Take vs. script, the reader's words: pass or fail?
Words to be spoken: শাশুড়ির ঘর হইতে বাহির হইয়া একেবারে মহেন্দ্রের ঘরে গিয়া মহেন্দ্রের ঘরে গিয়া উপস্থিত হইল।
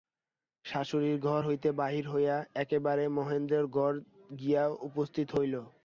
fail